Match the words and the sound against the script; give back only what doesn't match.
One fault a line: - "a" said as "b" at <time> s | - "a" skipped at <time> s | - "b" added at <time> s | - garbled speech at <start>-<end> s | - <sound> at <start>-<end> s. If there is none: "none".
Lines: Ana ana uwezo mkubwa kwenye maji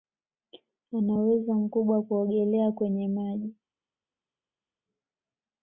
- "ana" skipped at 1.1 s
- "kuogelea" added at 2.0 s